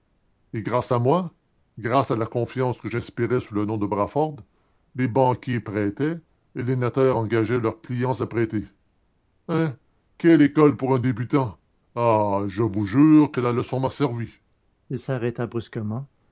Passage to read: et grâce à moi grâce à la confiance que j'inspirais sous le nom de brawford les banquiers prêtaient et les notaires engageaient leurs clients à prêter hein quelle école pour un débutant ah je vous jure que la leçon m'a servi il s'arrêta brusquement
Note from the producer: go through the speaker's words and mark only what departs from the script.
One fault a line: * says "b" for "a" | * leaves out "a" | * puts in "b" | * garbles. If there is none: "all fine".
all fine